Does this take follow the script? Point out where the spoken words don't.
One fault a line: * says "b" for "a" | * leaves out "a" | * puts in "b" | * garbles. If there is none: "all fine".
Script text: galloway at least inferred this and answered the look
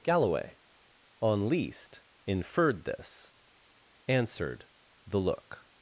* says "on" for "at"
* leaves out "and"